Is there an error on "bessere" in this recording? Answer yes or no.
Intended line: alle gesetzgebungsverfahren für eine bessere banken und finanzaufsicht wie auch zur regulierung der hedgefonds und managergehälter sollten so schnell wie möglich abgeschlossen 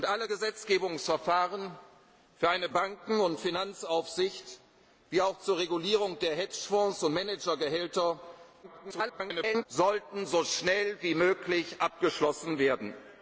yes